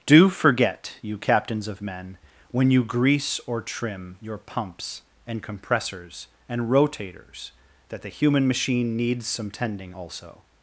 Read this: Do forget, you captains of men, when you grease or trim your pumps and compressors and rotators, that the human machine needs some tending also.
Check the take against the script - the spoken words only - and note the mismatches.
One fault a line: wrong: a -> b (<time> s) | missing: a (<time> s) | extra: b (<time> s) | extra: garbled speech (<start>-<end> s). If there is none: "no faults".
no faults